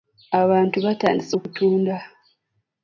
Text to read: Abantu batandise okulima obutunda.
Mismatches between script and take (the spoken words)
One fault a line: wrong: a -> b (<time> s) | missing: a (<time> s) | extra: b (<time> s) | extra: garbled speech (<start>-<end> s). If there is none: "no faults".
missing: okulima (1.4 s)